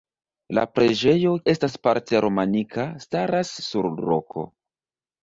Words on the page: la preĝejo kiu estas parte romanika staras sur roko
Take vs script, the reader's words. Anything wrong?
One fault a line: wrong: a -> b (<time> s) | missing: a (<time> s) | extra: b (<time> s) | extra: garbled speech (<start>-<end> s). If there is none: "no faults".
missing: kiu (1.3 s)